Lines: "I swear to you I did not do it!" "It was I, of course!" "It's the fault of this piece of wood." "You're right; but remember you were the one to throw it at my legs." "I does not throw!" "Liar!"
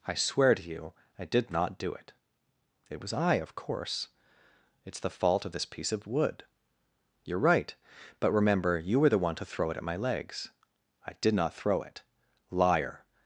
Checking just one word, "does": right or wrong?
wrong